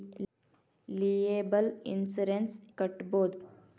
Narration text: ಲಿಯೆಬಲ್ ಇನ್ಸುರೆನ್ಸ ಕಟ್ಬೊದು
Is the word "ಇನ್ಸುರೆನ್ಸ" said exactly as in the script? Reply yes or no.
yes